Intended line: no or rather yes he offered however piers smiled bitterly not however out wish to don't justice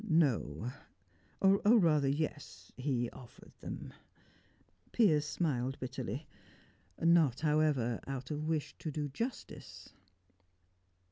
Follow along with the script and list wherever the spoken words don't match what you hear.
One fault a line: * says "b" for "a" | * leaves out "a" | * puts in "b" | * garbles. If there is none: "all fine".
* says "them" for "however"
* puts in "of"
* says "do" for "don't"